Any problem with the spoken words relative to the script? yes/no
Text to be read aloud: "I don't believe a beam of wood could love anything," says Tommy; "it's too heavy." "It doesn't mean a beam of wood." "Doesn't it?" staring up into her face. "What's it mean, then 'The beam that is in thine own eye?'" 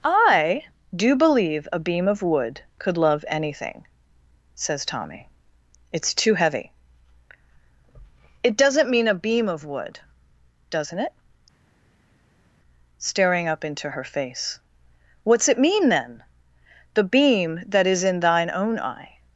yes